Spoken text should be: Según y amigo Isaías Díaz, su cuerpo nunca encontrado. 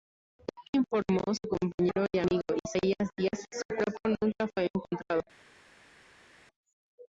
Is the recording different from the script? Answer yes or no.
yes